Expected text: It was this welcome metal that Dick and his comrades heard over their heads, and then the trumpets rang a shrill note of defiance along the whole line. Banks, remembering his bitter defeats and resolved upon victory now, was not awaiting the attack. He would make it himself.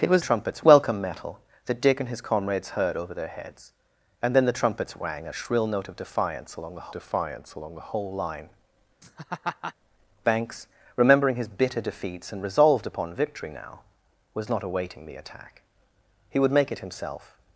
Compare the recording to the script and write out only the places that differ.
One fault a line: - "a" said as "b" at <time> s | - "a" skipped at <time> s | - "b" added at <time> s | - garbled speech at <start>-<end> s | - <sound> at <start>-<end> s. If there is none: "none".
- "this" said as "trumpets" at 0.2 s
- "defiance along the" added at 6.9 s
- laugh at 9.0-9.7 s